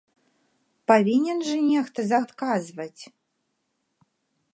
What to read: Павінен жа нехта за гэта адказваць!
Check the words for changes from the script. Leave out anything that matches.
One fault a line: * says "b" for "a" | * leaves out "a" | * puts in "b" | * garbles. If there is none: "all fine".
* leaves out "гэта"